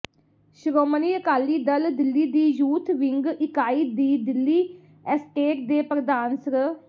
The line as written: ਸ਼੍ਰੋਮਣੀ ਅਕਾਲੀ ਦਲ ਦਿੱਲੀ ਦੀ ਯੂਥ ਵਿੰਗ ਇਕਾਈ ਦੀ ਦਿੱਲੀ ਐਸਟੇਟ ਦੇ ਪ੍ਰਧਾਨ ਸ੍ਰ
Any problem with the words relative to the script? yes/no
no